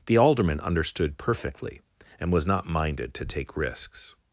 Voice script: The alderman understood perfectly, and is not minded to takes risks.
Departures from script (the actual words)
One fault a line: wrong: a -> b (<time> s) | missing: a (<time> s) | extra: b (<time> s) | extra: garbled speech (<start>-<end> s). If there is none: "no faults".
wrong: is -> was (2.3 s)
wrong: takes -> take (3.2 s)